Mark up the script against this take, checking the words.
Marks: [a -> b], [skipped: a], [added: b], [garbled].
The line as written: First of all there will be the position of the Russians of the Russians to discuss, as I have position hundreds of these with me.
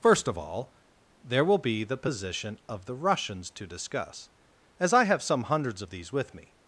First of all there will be the position of the Russians [skipped: of the Russians] to discuss, as I have [position -> some] hundreds of these with me.